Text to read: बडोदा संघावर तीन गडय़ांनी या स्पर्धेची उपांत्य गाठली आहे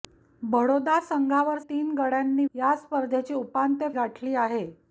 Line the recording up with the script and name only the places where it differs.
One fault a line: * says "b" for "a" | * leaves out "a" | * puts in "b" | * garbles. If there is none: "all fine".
all fine